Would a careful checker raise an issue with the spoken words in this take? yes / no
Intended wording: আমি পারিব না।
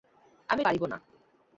no